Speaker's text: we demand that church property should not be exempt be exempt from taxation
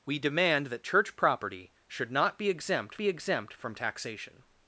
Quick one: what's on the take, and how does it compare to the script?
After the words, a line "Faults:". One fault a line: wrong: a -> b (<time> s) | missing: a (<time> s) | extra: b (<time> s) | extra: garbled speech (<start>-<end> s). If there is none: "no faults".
we demand that church property should not be exempt be exempt from taxation
Faults:
no faults